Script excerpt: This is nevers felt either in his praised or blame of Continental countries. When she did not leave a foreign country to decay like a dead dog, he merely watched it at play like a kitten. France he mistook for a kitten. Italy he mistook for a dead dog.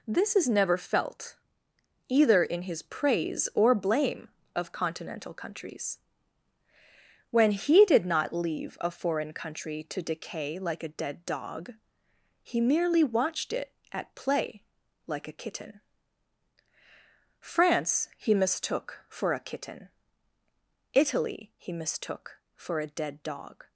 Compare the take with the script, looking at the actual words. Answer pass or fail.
fail